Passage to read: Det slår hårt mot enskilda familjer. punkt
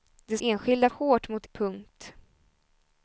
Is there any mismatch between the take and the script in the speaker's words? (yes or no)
yes